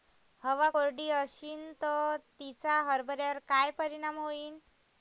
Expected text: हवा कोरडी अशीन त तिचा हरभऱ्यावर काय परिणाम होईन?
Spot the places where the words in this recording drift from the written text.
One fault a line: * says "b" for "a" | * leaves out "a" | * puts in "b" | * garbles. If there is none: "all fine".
all fine